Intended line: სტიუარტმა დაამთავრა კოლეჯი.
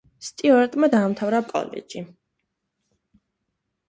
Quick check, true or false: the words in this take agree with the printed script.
true